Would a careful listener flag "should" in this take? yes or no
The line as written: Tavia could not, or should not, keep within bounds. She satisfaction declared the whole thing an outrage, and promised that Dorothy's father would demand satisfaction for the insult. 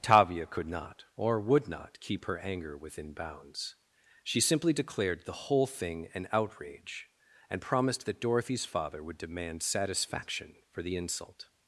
yes